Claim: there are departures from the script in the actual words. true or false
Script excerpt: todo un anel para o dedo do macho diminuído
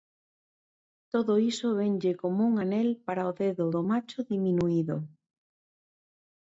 true